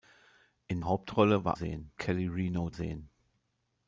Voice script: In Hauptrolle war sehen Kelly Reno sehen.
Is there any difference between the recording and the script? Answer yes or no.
no